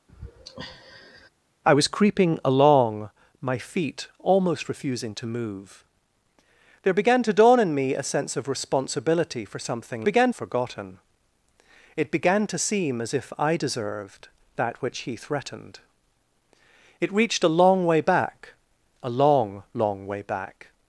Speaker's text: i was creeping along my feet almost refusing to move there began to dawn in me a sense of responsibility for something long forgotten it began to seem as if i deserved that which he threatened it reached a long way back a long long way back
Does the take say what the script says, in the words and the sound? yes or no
no